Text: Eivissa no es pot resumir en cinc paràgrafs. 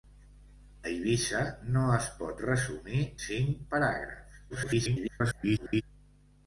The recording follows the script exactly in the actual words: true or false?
false